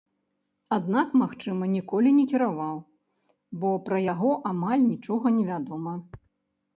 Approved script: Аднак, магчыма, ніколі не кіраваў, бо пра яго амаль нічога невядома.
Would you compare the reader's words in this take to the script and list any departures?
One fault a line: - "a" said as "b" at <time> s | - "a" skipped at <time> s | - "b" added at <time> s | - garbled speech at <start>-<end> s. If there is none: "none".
none